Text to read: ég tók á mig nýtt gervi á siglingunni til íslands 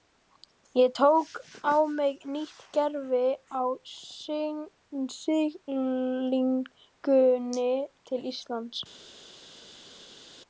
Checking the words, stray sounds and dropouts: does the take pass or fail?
pass